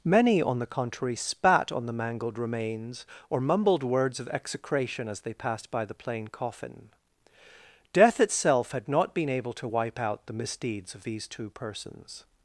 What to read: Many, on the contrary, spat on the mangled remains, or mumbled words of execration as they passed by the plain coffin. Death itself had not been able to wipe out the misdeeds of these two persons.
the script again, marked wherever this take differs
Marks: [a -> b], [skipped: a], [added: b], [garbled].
Many, on the contrary, spat on the mangled remains, or mumbled words of execration as they passed by the plain coffin. Death itself had not been able to wipe out the misdeeds of these two persons.